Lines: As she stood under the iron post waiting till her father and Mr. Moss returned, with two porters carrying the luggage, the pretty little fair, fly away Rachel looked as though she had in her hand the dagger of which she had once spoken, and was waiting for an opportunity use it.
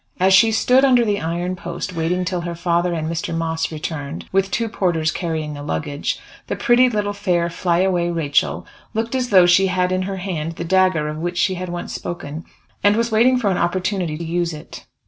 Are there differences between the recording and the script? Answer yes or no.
no